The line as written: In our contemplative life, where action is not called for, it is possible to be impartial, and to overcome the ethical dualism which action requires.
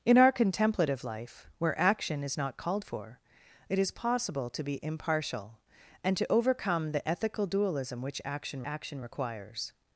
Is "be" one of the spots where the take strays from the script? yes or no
no